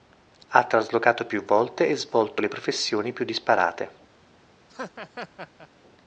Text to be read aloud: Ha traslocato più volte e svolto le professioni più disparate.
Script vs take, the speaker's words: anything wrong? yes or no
no